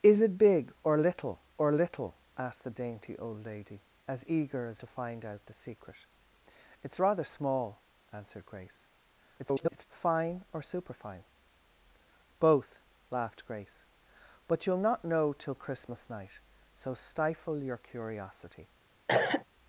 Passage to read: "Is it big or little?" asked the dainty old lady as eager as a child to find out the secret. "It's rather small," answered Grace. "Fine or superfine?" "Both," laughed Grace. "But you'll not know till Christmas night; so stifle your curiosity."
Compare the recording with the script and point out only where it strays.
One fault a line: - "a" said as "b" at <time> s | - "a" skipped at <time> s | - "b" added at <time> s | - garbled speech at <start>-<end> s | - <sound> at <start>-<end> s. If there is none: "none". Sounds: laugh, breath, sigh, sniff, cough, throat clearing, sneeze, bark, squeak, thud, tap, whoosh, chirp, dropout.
- "or little" added at 1.6 s
- "a child" skipped at 4.8 s
- garbled speech at 9.4-9.9 s
- cough at 19.1-19.4 s